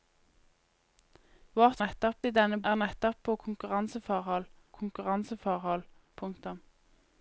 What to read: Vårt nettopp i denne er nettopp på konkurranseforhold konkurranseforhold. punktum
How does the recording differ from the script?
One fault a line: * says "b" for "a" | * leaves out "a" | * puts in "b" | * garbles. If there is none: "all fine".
all fine